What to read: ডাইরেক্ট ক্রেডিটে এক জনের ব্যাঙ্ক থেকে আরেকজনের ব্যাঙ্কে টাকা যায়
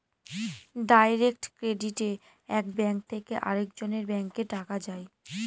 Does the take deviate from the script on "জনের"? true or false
true